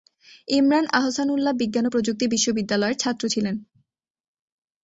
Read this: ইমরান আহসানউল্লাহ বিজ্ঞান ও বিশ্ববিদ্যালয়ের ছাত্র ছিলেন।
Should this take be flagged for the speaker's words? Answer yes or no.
yes